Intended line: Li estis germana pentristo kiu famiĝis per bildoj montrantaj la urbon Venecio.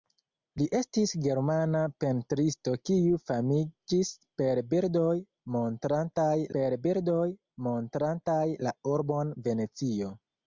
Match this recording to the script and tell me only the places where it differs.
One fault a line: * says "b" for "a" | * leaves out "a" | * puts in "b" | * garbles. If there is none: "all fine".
* puts in "per bildoj montrantaj"